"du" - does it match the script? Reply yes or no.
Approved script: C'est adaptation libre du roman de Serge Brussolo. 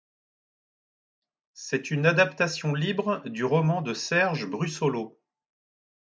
yes